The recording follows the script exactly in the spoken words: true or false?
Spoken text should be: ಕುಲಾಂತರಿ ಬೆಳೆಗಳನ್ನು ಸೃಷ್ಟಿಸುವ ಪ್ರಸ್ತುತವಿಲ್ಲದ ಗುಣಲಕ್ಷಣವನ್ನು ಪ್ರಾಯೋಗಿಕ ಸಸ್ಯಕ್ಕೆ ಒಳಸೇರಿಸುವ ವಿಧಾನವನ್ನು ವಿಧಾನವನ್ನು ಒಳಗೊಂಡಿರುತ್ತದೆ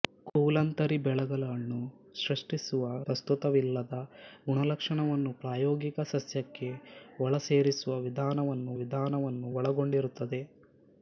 true